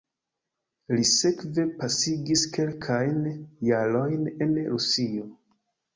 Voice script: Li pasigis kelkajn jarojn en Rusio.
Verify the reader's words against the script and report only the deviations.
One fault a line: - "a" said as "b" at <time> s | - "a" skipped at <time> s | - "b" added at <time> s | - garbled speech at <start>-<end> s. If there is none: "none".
- "sekve" added at 1.1 s